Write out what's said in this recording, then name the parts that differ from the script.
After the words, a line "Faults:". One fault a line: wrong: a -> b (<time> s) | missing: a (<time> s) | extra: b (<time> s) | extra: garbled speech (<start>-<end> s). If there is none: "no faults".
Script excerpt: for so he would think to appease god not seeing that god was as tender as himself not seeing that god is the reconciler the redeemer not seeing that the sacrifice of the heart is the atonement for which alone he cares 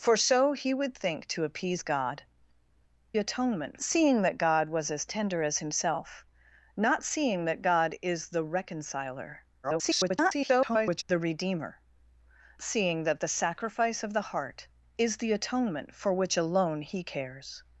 for so he would think to appease god atonement seeing that god was as tender as himself not seeing that god is the reconciler [garbled] the redeemer seeing that the sacrifice of the heart is the atonement for which alone he cares
Faults:
wrong: not -> atonement (3.2 s)
extra: garbled speech (9.6-11.0 s)
missing: not (11.8 s)